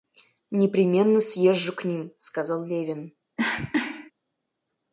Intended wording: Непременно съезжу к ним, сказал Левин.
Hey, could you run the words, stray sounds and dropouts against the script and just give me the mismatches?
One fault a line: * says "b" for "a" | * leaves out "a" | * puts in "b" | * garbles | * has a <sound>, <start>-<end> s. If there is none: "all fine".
* has a cough, 3.4-4.1 s